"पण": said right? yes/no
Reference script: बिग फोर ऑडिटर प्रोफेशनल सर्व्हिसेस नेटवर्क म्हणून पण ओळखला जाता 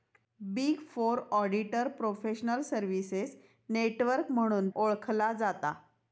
no